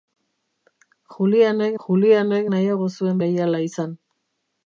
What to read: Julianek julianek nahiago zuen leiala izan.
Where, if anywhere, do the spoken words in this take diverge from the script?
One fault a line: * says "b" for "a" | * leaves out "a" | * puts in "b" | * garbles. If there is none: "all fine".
all fine